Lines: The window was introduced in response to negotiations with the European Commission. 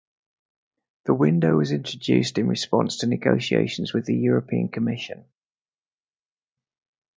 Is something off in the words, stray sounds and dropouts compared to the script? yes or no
no